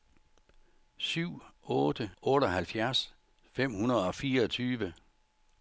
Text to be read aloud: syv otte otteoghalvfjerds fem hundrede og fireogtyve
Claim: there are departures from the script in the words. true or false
false